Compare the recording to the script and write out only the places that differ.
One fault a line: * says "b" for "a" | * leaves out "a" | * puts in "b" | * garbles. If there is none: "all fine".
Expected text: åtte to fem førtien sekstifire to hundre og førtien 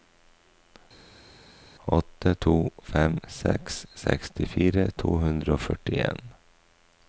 * says "seks" for "førtien"